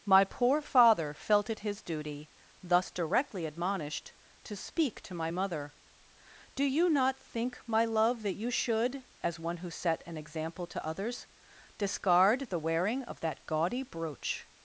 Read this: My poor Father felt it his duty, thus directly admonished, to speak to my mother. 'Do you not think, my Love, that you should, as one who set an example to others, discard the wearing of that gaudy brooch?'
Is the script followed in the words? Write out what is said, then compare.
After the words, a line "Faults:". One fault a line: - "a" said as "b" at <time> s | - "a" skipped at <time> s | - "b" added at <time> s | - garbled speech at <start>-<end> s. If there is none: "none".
My poor Father felt it his duty, thus directly admonished, to speak to my mother. 'Do you not think, my Love, that you should, as one who set an example to others, discard the wearing of that gaudy brooch?'
Faults:
none